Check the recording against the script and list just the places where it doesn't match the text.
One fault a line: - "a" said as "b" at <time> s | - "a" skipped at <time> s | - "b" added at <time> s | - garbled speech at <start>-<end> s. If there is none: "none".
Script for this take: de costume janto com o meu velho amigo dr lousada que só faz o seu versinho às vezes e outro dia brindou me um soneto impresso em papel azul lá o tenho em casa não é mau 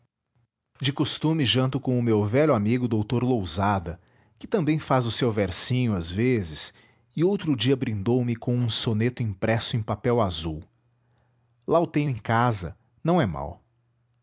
- "só" said as "também" at 4.5 s
- "com" added at 8.3 s